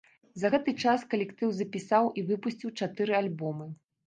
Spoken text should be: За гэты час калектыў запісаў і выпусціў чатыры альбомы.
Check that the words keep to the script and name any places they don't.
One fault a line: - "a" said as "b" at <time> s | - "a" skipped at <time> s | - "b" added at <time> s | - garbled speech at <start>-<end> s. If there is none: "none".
none